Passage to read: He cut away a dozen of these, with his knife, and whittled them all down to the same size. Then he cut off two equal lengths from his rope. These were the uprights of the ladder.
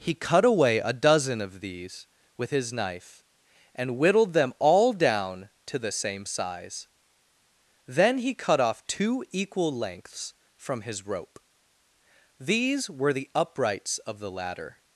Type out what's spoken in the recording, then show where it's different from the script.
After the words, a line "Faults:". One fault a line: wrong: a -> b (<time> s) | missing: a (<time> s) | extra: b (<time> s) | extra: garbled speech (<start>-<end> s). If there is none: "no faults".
He cut away a dozen of these, with his knife, and whittled them all down to the same size. Then he cut off two equal lengths from his rope. These were the uprights of the ladder.
Faults:
no faults